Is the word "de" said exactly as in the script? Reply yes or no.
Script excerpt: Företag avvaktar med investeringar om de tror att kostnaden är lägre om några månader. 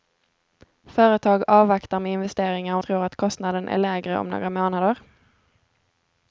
no